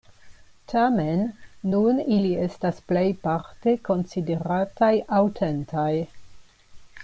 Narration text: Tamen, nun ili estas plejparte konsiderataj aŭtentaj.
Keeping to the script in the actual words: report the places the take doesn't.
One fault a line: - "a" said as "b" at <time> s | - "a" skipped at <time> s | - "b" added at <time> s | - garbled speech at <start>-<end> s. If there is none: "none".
none